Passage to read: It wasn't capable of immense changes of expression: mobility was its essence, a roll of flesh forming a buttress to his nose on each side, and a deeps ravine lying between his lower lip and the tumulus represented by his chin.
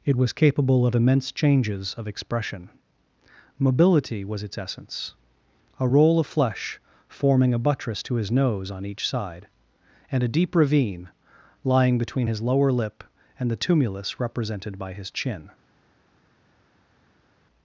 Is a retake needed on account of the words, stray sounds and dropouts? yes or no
yes